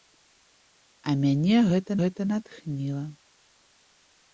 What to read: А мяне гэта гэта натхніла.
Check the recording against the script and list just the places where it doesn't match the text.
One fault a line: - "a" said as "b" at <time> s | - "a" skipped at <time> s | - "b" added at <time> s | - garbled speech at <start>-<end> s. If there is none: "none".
none